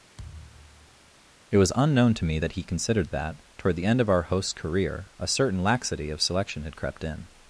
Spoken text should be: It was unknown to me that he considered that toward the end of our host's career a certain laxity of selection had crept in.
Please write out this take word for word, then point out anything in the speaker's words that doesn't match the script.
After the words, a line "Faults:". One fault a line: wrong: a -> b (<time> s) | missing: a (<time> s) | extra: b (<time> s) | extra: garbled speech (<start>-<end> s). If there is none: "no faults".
It was unknown to me that he considered that toward the end of our host's career a certain laxity of selection had crept in.
Faults:
no faults